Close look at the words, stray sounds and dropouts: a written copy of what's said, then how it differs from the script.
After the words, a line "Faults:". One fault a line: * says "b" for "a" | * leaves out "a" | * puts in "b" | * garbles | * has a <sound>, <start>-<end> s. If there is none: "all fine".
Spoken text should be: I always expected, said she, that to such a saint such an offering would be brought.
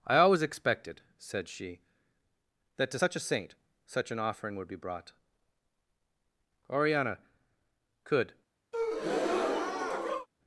I always expected, said she, that to such a saint such an offering would be brought. Oriana could
Faults:
* puts in "Oriana could"
* has a breath, 8.7-10.3 s